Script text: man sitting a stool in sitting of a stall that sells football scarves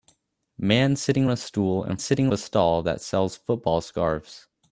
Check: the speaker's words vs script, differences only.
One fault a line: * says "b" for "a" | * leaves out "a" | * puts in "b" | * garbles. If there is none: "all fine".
all fine